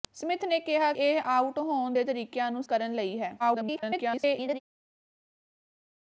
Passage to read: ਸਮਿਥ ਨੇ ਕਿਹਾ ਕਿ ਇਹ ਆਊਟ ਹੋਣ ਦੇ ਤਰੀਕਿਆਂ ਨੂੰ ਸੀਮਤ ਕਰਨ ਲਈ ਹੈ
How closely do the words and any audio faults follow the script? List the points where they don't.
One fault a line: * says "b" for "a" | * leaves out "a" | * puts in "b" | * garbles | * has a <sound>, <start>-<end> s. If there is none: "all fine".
* leaves out "ਕਿ"
* leaves out "ਸੀਮਤ"
* garbles